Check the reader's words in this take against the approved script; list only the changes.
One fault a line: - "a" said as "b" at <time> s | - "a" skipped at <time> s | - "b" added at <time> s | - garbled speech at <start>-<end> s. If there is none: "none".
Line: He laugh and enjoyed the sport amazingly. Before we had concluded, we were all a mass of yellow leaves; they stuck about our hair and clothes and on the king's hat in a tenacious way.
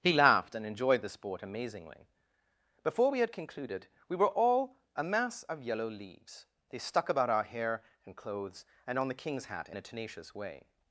- "laugh" said as "laughed" at 0.1 s